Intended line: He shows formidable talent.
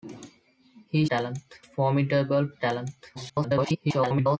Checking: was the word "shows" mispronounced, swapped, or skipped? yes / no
yes